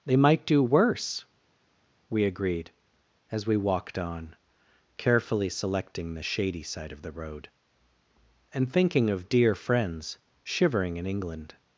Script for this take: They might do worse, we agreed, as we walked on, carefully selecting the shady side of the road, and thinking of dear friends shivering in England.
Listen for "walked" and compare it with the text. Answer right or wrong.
right